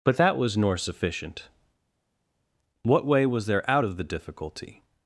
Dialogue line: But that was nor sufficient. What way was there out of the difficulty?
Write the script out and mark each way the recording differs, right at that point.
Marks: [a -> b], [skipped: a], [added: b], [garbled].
But that was nor sufficient. What way was there out of the difficulty?